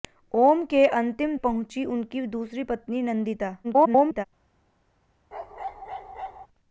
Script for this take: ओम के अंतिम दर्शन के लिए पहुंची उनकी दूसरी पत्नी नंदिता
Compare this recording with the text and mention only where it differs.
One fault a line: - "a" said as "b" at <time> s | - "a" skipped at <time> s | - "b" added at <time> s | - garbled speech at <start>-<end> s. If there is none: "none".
- "दर्शन के लिए" skipped at 1.4 s
- garbled speech at 3.6-4.3 s